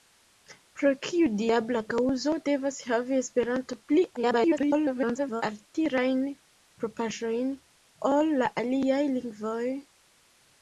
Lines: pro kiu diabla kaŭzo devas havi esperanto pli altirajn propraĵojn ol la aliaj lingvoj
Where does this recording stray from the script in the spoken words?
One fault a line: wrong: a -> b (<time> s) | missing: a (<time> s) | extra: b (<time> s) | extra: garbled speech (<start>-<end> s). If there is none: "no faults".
extra: garbled speech (4.2-5.4 s)